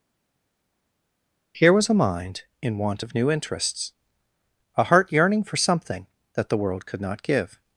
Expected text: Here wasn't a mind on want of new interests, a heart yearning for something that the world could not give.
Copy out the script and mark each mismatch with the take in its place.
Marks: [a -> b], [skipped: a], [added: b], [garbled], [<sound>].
Here [wasn't -> was] a mind [on -> in] want of new interests, a heart yearning for something that the world could not give.